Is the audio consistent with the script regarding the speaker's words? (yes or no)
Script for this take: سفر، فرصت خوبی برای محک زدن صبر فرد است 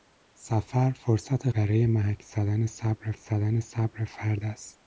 no